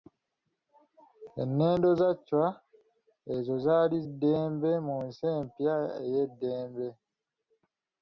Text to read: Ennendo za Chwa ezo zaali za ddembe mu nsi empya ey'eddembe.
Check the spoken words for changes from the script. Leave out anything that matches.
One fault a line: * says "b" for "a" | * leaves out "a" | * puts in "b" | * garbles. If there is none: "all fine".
* leaves out "za"